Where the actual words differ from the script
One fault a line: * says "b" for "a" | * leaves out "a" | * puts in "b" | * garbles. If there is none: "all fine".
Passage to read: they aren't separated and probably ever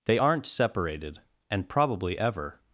all fine